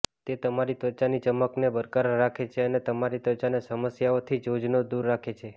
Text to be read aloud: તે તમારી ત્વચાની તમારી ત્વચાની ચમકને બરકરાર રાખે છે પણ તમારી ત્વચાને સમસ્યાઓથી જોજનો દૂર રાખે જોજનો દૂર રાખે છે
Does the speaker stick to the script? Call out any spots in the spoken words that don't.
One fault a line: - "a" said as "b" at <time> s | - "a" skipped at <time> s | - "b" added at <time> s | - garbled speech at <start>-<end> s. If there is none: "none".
- "તમારી ત્વચાની" skipped at 1.2 s
- "પણ" said as "અને" at 2.6 s
- "જોજનો દૂર રાખે" skipped at 5.3 s